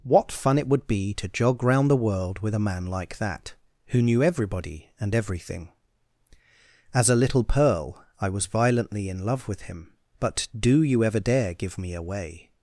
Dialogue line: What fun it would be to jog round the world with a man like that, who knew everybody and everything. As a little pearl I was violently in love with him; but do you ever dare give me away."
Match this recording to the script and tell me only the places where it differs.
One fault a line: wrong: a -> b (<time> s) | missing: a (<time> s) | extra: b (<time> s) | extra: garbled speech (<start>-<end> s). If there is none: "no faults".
no faults